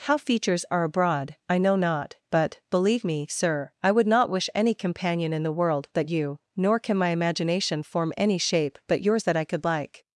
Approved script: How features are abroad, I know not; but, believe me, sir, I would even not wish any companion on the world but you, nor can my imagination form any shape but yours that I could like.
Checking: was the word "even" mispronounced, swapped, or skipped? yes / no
yes